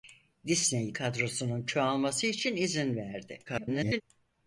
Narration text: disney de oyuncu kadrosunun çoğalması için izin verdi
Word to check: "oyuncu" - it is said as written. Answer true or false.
false